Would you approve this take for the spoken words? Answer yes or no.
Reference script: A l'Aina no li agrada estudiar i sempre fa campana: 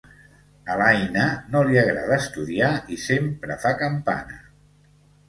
yes